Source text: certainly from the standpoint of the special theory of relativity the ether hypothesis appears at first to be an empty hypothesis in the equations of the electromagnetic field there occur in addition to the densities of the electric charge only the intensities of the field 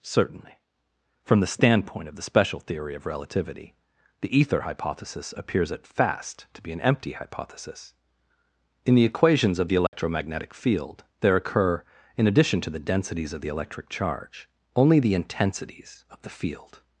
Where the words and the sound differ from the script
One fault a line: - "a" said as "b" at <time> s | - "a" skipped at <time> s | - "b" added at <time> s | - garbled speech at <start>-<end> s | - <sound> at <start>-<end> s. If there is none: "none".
- "first" said as "fast" at 5.8 s
- dropout at 9.9-9.9 s